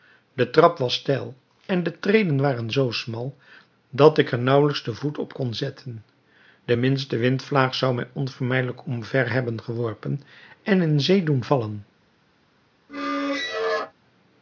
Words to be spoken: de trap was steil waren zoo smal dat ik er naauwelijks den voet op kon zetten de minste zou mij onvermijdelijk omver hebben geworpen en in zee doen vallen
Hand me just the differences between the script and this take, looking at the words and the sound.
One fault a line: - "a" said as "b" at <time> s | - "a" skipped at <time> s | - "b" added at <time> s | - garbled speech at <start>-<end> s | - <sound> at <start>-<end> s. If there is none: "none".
- "en de treden" added at 1.6 s
- "windvlaag" added at 7.2 s
- squeak at 12.9-13.9 s